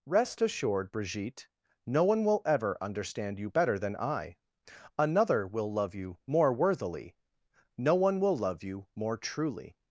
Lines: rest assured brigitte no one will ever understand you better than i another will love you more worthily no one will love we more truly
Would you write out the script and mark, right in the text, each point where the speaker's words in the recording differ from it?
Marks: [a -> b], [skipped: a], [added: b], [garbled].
rest assured brigitte no one will ever understand you better than i another will love you more worthily no one will love [we -> you] more truly